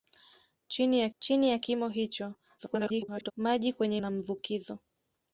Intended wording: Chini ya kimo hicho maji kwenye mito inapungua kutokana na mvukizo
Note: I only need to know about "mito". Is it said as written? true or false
false